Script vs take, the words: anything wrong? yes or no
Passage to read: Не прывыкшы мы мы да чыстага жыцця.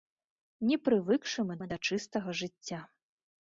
no